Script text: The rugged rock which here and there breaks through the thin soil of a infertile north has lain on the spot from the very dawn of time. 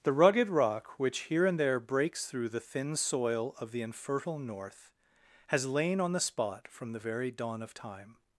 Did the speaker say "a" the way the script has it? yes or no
no